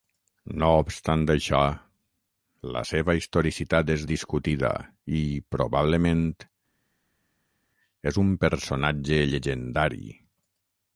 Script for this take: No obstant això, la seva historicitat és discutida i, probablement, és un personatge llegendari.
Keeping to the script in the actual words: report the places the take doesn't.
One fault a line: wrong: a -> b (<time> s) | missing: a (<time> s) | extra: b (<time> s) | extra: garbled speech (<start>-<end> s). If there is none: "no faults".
no faults